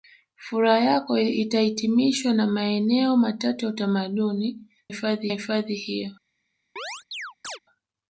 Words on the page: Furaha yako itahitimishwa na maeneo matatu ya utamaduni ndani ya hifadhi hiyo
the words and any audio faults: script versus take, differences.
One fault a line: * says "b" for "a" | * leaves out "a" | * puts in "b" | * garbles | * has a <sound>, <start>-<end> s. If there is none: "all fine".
* says "hifadhi" for "ndani"
* has a chirp, 6.8-7.6 s